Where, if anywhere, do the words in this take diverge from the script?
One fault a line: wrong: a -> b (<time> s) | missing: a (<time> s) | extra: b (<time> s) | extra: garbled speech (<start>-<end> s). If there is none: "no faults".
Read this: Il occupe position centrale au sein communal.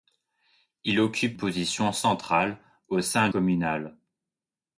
no faults